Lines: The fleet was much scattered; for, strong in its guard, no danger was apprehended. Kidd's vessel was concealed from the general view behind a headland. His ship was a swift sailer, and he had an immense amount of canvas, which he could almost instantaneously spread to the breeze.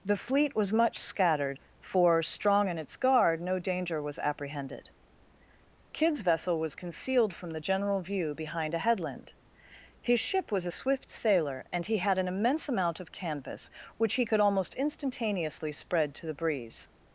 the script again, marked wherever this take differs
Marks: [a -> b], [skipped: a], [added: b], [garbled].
The fleet was much scattered; for, strong in its guard, no danger was apprehended. Kidd's vessel was concealed from the general view behind a headland. His ship was a swift sailer, and he had an immense amount of canvas, which he could almost instantaneously spread to the breeze.